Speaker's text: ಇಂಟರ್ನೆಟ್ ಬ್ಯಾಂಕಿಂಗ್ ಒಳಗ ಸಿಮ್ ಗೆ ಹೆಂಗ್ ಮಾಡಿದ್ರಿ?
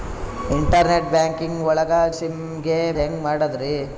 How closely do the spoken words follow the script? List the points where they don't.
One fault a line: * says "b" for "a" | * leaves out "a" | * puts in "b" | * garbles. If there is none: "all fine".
all fine